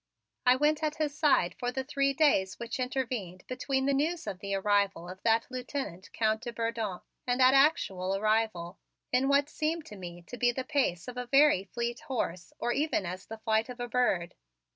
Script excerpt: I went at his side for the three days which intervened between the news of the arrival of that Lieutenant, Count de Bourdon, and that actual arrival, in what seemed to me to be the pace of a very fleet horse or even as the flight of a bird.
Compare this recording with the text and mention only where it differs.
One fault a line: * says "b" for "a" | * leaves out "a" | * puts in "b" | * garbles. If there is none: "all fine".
all fine